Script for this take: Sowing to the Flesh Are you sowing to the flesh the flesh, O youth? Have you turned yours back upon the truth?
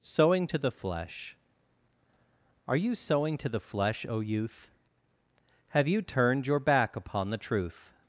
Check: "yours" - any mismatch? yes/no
yes